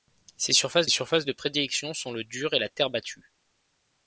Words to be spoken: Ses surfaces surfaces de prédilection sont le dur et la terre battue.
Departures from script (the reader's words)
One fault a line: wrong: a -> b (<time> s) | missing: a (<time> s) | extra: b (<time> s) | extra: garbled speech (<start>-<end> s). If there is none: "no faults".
no faults